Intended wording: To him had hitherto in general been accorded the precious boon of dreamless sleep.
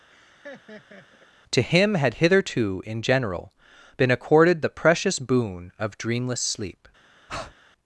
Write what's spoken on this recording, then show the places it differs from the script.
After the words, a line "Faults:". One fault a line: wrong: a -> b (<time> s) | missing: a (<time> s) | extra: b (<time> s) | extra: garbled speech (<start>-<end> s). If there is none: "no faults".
To him had hitherto in general been accorded the precious boon of dreamless sleep.
Faults:
no faults